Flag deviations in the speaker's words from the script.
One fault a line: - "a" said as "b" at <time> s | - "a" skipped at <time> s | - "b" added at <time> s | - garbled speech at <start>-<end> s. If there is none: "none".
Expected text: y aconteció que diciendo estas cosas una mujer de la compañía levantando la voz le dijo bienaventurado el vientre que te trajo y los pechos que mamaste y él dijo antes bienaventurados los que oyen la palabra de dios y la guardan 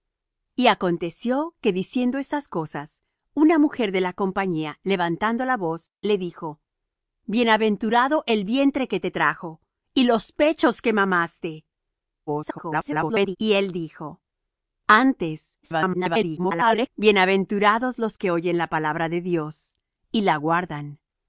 - garbled speech at 12.3-13.4 s
- garbled speech at 15.6-16.9 s